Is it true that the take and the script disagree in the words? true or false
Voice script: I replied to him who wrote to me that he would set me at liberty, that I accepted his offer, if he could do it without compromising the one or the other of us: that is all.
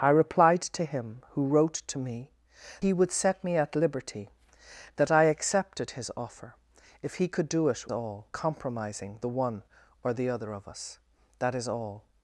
true